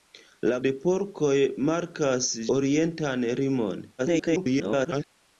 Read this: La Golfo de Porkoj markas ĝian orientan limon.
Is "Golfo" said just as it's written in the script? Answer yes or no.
no